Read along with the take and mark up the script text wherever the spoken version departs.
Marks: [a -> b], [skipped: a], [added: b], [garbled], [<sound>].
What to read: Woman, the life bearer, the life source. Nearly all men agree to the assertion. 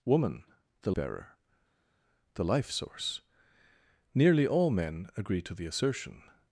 Woman, the [skipped: life] bearer, the life source. Nearly all men agree to the assertion.